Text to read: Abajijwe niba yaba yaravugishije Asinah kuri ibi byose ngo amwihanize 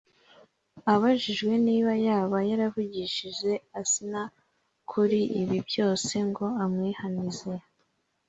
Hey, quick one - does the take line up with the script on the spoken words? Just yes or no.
yes